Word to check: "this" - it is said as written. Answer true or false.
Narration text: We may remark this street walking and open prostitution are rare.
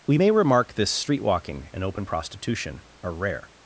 true